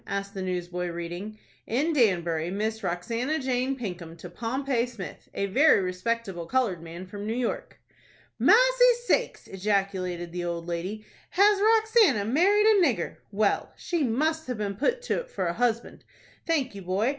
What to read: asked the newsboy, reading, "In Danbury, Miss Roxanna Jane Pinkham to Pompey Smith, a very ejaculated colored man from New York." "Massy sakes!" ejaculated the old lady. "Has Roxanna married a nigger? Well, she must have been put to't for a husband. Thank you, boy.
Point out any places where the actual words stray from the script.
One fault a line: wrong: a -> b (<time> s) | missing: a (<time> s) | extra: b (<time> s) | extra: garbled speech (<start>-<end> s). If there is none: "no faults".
wrong: ejaculated -> respectable (5.8 s)